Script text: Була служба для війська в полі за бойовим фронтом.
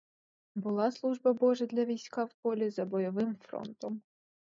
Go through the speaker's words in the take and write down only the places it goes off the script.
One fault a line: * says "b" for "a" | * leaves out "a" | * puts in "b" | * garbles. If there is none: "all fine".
* puts in "божа"